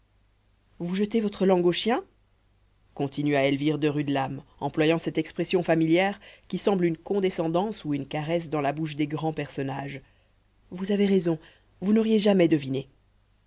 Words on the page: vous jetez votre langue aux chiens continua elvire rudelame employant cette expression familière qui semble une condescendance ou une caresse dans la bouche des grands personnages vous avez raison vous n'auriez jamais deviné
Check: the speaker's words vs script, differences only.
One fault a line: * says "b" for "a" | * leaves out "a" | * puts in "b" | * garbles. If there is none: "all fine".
* puts in "de"